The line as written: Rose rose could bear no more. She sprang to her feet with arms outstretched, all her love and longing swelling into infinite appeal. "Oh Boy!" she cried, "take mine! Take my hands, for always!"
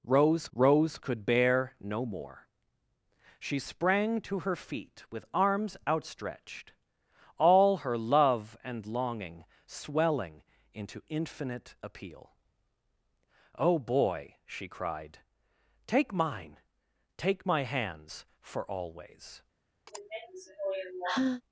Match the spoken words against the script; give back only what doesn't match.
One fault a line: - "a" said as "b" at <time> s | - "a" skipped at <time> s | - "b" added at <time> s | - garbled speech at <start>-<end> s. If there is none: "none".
none